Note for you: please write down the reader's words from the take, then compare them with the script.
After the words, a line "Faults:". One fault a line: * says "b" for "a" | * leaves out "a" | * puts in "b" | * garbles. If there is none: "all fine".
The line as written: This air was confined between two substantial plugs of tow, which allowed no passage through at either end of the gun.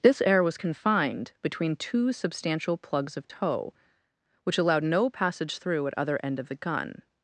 This air was confined between two substantial plugs of tow, which allowed no passage through at other end of the gun.
Faults:
* says "other" for "either"